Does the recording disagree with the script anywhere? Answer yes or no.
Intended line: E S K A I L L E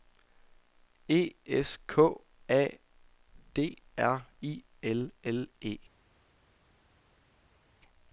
yes